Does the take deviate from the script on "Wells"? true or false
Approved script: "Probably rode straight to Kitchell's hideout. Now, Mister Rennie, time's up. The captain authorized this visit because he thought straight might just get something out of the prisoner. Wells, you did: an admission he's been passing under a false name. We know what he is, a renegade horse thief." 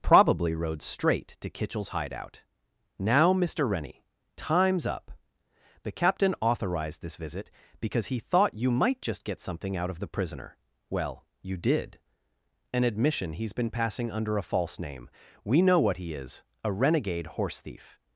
true